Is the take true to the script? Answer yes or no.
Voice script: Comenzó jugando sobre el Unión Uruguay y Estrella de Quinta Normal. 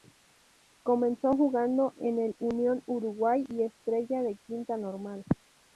no